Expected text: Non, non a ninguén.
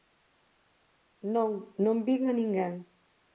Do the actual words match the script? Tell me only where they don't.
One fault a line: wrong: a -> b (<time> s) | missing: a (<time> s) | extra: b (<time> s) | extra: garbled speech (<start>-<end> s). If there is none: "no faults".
extra: vin (2.1 s)